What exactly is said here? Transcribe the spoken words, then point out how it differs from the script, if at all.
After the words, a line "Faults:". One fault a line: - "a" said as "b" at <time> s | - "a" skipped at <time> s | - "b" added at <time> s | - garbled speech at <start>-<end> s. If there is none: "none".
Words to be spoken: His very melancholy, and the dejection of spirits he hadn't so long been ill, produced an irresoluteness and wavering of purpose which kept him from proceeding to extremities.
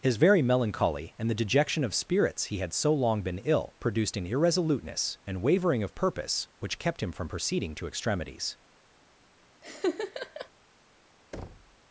His very melancholy, and the dejection of spirits he had so long been ill, produced an irresoluteness and wavering of purpose which kept him from proceeding to extremities.
Faults:
- "hadn't" said as "had" at 2.6 s